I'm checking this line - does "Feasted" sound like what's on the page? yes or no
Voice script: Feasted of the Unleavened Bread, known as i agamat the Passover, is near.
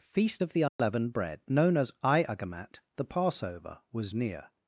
no